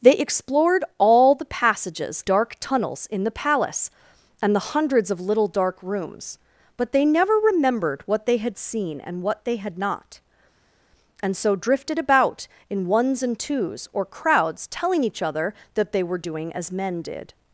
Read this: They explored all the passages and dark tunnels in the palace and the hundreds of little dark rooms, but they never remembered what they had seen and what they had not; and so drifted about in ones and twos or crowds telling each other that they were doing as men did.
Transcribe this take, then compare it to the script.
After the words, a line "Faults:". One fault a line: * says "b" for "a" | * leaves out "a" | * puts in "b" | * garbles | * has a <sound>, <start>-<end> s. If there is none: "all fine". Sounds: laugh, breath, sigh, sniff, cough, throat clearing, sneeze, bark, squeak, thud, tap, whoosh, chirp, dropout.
They explored all the passages dark tunnels in the palace and the hundreds of little dark rooms, but they never remembered what they had seen and what they had not; and so drifted about in ones and twos or crowds telling each other that they were doing as men did.
Faults:
* leaves out "and"